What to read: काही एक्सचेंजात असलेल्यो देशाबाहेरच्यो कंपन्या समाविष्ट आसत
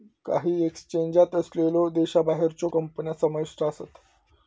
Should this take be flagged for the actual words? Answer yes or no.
no